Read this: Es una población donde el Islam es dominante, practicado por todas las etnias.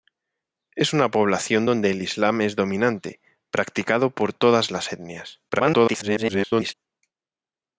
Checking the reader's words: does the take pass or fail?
fail